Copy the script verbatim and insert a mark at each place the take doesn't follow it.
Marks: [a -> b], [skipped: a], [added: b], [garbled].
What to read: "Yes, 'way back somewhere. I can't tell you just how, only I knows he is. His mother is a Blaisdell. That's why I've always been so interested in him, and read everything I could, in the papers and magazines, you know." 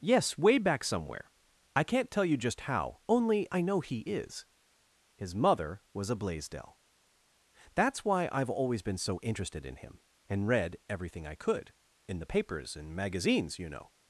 "Yes, 'way back somewhere. I can't tell you just how, only I [knows -> know] he is. His mother [is -> was] a Blaisdell. That's why I've always been so interested in him, and read everything I could, in the papers and magazines, you know."